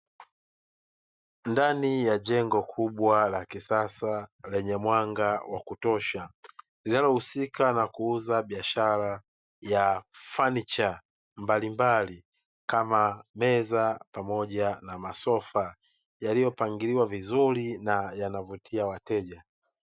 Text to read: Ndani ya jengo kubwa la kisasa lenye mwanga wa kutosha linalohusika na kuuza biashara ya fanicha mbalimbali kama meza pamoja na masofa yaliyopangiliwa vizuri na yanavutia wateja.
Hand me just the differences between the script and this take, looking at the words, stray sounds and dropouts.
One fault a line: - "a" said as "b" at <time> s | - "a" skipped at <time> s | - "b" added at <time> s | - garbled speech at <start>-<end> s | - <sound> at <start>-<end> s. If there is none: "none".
none